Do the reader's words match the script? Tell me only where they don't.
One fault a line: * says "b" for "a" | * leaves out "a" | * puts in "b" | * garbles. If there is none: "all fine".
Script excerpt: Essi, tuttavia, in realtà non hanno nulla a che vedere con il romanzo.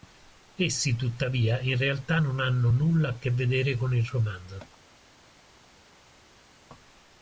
all fine